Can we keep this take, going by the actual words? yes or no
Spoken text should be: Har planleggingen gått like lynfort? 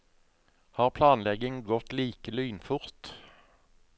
yes